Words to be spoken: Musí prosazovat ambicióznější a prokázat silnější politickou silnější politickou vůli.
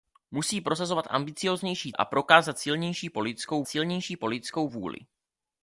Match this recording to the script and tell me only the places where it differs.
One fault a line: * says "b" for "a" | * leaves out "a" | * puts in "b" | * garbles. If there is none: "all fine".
all fine